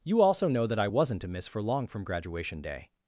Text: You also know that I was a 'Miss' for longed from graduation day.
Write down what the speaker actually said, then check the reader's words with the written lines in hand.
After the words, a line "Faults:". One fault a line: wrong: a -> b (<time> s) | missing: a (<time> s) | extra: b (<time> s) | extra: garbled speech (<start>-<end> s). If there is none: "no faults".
You also know that I wasn't a 'Miss' for long from graduation day.
Faults:
wrong: was -> wasn't (0.8 s)
wrong: longed -> long (1.6 s)